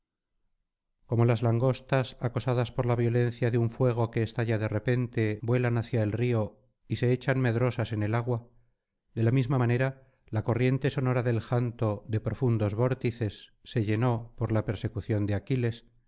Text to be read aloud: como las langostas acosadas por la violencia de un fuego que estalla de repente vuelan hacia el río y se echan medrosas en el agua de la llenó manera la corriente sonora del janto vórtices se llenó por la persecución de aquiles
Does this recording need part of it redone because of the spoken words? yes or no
yes